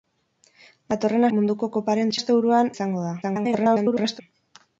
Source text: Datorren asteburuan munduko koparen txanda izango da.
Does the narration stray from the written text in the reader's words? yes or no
yes